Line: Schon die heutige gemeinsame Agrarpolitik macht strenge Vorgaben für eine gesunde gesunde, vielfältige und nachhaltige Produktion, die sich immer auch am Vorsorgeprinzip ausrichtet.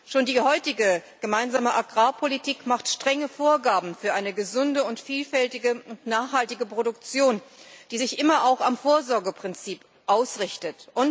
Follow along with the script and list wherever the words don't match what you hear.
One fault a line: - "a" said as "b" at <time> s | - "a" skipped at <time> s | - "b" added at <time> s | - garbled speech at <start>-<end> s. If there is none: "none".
- "gesunde" skipped at 4.8 s